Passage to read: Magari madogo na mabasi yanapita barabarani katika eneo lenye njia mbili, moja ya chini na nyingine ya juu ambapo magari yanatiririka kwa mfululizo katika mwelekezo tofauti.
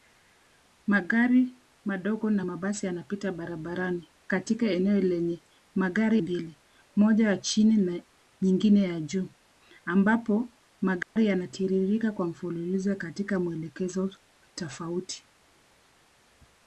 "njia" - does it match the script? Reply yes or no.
no